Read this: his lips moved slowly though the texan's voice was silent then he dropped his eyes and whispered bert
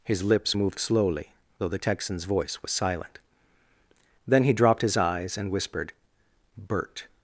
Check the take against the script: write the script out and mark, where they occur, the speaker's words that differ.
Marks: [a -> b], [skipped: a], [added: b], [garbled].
his lips moved slowly though the texan's voice was silent then he dropped his eyes and whispered bert